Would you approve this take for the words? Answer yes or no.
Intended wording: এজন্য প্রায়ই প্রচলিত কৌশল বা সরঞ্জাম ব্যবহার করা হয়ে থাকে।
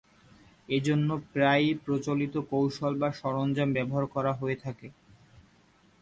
yes